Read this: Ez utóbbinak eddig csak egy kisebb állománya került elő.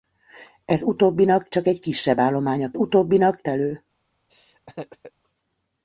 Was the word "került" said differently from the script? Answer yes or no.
yes